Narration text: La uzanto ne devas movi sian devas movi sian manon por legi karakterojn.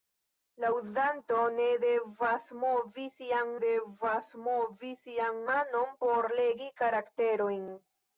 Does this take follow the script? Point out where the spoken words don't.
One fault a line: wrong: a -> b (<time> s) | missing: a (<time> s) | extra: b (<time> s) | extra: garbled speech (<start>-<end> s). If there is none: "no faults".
no faults